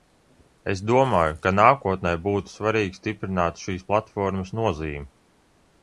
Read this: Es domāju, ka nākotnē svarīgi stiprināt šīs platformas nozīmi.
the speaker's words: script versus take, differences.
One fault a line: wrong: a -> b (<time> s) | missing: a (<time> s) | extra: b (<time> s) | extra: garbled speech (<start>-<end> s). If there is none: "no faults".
extra: būtu (2.3 s)